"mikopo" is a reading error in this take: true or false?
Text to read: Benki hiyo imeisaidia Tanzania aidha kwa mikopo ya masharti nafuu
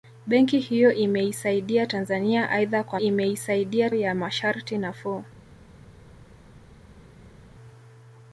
true